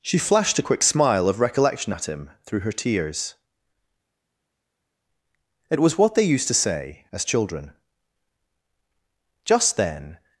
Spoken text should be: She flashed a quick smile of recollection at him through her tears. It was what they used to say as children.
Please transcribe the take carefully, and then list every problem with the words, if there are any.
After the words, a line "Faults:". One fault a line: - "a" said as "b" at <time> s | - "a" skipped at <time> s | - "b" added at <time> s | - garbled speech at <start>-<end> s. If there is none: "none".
She flashed a quick smile of recollection at him through her tears. It was what they used to say as children. Just then
Faults:
- "Just then" added at 9.4 s